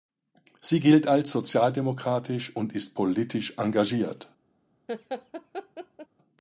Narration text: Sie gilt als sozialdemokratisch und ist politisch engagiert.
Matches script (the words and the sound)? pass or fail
fail